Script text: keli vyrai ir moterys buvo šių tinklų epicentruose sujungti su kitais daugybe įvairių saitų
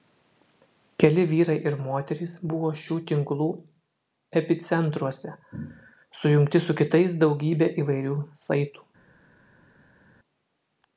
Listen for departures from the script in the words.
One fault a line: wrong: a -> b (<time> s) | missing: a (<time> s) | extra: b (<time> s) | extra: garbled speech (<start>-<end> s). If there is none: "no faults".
no faults